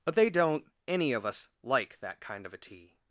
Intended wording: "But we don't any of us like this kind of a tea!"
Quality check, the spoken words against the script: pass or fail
fail